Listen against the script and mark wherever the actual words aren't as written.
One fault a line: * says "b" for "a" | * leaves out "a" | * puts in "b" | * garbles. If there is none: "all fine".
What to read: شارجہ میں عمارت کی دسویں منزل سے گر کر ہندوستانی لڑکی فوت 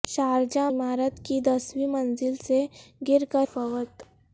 * leaves out "میں"
* leaves out "ہندوستانی لڑکی"